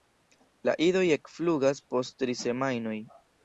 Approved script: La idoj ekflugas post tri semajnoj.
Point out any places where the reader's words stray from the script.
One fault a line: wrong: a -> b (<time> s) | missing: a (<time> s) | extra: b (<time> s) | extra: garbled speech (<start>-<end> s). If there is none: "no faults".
no faults